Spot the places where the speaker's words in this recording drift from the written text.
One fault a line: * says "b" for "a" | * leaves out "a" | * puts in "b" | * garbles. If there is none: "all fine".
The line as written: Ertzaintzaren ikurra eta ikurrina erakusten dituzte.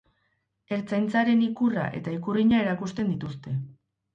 all fine